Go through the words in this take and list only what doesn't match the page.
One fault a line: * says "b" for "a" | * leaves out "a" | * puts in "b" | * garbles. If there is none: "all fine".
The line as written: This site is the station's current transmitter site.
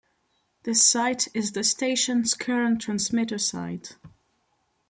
all fine